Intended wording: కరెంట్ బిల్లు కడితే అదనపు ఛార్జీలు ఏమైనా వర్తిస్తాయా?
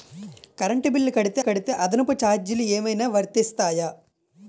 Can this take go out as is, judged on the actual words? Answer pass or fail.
fail